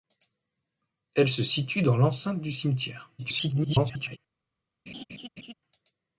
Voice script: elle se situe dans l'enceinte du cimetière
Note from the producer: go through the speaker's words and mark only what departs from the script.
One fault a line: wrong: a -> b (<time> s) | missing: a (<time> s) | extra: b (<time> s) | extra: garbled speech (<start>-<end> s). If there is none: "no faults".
extra: garbled speech (3.2-4.2 s)